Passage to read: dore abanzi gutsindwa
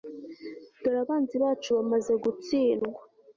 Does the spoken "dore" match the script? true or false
true